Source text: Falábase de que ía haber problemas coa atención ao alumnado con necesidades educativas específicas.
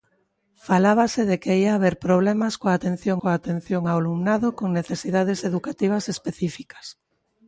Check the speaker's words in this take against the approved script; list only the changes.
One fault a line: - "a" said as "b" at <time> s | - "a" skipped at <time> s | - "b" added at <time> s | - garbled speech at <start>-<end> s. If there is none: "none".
- "coa atención" added at 3.2 s